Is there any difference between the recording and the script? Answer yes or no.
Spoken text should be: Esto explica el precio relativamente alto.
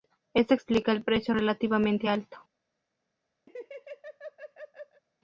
no